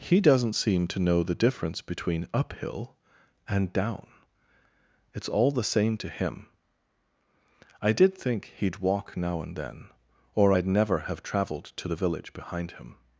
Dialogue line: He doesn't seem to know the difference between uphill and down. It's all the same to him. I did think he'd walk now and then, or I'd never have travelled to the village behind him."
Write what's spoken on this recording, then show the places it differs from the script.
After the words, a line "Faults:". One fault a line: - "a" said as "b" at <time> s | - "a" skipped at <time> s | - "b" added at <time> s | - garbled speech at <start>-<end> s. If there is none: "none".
He doesn't seem to know the difference between uphill and down. It's all the same to him. I did think he'd walk now and then, or I'd never have travelled to the village behind him."
Faults:
none